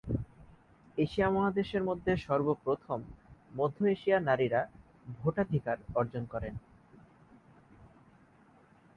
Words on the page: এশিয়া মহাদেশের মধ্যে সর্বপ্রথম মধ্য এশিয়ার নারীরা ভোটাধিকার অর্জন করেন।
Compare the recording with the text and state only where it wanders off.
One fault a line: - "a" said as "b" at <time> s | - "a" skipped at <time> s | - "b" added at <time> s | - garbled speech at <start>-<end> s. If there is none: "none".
none